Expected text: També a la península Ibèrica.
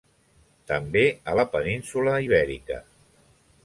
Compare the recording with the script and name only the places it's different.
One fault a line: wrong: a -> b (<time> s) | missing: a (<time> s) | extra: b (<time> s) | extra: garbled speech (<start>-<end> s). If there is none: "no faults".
no faults